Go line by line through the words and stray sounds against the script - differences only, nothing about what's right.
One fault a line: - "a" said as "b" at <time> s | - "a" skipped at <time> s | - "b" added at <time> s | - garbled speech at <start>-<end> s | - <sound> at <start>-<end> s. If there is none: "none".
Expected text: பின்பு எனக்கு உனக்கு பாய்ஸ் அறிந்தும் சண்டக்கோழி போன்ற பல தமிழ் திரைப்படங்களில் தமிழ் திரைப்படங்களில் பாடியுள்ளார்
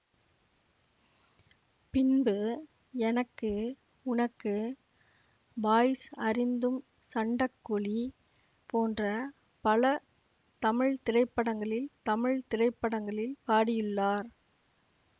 none